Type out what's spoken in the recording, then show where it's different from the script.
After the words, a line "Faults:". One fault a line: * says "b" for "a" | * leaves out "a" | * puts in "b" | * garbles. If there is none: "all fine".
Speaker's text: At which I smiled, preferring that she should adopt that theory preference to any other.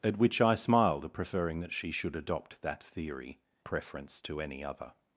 At which I smiled, preferring that she should adopt that theory preference to any other.
Faults:
all fine